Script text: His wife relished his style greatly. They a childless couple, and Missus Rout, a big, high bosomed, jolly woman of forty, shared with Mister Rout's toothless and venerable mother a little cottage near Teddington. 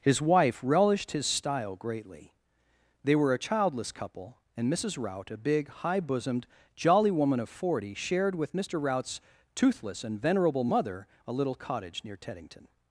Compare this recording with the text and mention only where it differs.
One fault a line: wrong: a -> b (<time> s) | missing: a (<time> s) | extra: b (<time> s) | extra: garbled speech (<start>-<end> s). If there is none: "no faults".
extra: were (3.1 s)